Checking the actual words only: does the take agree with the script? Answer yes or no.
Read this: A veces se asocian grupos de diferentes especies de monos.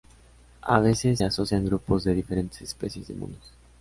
no